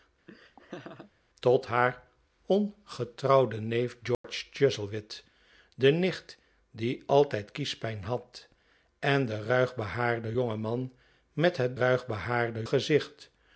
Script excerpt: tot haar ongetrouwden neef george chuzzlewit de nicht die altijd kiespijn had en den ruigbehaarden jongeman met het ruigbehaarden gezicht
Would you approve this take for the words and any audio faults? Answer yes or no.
no